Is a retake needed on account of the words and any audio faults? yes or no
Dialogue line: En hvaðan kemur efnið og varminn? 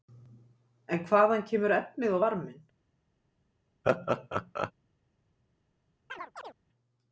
yes